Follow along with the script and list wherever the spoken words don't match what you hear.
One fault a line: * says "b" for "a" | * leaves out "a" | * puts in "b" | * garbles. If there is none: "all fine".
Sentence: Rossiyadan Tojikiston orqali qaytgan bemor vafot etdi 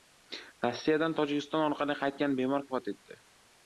all fine